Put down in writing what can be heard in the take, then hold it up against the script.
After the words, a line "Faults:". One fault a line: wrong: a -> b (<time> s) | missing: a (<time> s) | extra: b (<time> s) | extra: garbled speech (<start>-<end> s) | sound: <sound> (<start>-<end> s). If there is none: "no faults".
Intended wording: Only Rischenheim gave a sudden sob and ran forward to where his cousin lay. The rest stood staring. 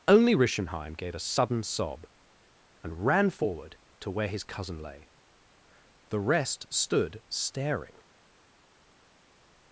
Only Rischenheim gave a sudden sob and ran forward to where his cousin lay. The rest stood staring.
Faults:
no faults